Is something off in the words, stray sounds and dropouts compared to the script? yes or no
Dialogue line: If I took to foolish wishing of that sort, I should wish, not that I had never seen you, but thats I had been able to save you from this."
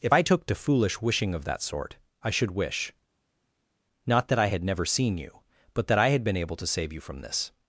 yes